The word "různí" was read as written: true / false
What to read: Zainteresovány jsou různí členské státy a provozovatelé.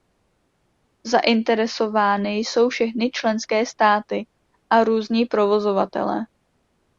false